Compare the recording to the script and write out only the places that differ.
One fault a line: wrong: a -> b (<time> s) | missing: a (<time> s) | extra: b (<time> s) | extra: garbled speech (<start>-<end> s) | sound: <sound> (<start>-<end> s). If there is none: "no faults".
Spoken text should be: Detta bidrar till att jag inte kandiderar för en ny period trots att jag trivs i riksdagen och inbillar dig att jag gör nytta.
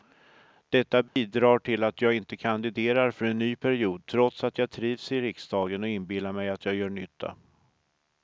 sound: dropout (1.1-1.2 s)
wrong: dig -> mig (6.3 s)